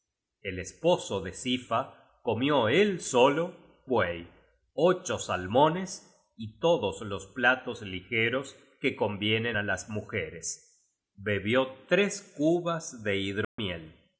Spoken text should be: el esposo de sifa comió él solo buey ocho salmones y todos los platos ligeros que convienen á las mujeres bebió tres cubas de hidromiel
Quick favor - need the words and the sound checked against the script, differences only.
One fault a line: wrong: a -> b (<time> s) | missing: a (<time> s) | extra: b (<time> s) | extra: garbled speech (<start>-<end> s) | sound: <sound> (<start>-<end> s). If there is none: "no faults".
sound: dropout (13.4-13.6 s)